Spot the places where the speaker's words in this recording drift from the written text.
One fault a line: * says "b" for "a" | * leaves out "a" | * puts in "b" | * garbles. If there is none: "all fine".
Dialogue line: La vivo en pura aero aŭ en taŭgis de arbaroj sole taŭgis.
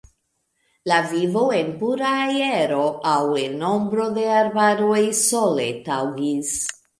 * says "ombro" for "taŭgis"